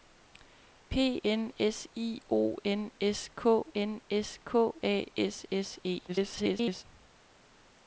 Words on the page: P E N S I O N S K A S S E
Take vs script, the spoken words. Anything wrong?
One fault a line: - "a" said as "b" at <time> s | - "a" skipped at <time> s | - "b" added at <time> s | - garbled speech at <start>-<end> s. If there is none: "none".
- "E" skipped at 1.2 s
- "N S K" added at 3.7 s
- garbled speech at 6.1-6.8 s